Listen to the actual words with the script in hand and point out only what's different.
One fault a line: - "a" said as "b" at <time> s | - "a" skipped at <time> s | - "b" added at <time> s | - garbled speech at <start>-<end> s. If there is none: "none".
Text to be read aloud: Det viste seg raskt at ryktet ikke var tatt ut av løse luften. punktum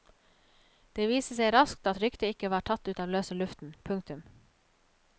none